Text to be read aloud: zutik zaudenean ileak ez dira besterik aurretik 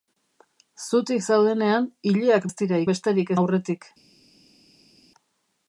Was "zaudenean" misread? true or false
false